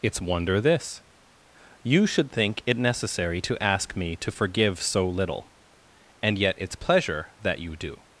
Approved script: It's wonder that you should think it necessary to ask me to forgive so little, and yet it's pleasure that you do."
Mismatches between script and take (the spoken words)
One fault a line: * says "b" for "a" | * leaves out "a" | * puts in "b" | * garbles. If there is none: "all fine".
* says "this" for "that"